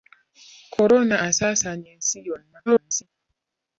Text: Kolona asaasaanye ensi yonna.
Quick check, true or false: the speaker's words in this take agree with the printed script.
false